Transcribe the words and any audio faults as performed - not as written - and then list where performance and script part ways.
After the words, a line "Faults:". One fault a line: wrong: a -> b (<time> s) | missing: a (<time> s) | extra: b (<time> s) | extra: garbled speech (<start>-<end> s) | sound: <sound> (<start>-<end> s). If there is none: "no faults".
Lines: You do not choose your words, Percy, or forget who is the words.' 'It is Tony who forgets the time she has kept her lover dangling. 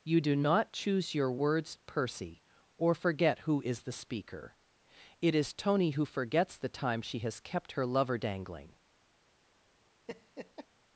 You do not choose your words, Percy, or forget who is the speaker.' 'It is Tony who forgets the time she has kept her lover dangling.
Faults:
wrong: words -> speaker (3.9 s)
sound: laugh (10.1-10.7 s)